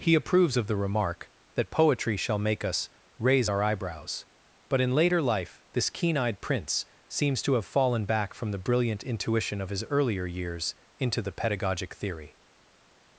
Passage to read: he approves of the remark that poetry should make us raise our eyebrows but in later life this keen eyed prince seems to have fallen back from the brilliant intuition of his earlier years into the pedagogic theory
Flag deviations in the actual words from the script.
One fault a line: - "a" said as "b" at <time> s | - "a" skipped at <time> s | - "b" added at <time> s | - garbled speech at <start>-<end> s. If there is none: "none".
- "should" said as "shall" at 2.2 s